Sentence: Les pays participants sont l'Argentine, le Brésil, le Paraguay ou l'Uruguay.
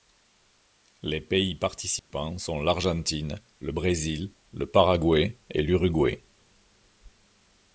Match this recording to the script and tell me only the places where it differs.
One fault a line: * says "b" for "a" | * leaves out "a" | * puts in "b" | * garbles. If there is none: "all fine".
* says "et" for "ou"